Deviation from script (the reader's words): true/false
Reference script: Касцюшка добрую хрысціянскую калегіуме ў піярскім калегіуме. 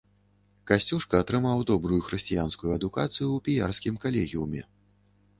true